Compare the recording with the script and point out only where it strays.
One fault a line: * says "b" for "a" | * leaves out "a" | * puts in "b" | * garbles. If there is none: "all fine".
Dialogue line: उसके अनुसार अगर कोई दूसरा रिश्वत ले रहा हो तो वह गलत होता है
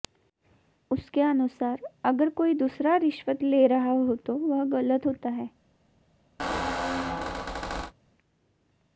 all fine